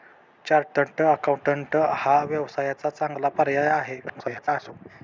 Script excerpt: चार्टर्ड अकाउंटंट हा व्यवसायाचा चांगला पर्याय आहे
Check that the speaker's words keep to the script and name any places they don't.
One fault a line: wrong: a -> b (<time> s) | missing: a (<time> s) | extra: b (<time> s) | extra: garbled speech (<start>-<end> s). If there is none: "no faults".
extra: garbled speech (4.1-4.7 s)